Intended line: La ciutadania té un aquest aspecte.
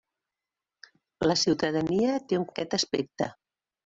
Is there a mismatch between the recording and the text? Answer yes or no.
no